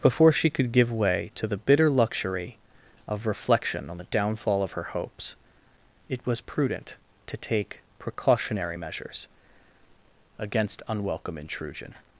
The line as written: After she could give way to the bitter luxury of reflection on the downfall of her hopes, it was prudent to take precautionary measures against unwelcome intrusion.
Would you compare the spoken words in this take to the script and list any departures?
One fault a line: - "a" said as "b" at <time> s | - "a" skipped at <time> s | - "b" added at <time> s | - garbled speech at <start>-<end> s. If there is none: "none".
- "After" said as "Before" at 0.0 s